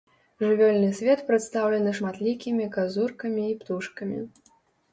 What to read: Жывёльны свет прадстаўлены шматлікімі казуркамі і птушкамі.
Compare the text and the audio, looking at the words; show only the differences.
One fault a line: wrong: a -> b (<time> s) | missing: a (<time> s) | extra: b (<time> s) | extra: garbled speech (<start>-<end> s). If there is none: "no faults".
no faults